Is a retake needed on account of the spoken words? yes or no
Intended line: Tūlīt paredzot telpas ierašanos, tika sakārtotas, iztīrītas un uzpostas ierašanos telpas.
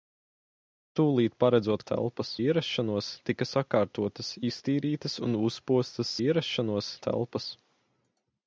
no